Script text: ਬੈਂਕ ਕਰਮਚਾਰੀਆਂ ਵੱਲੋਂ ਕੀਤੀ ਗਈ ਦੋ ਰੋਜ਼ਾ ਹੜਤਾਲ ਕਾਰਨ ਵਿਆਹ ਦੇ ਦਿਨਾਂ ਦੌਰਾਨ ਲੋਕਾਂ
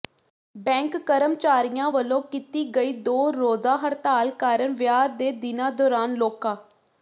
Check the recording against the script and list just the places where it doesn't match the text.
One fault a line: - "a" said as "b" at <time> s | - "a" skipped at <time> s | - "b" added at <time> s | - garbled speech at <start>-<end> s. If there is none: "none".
none